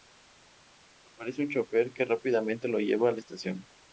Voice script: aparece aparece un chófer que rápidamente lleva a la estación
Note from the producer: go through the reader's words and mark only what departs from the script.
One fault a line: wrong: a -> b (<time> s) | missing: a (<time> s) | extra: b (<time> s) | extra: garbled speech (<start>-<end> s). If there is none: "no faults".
missing: aparece (1.4 s)
extra: lo (2.7 s)